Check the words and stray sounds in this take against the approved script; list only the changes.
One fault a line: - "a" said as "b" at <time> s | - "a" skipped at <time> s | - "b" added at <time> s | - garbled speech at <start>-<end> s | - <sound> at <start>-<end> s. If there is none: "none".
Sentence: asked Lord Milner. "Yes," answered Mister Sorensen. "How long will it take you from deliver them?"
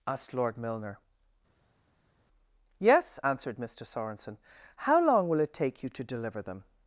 - "from" said as "to" at 5.9 s